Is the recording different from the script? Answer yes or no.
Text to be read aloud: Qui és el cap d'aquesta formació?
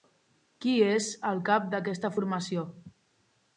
no